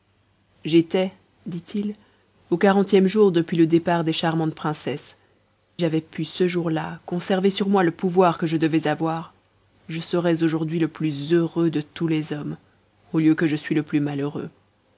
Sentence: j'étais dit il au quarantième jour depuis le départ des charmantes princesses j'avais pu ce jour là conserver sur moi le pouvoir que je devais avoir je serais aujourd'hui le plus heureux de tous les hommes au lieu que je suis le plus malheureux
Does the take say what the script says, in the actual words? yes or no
yes